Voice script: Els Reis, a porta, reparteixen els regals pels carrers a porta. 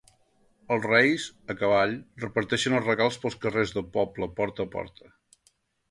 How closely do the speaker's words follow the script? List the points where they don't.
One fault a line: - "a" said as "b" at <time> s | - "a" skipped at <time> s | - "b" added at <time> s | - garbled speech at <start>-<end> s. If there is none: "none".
- "porta" said as "cavall" at 1.6 s
- "del poble porta" added at 3.8 s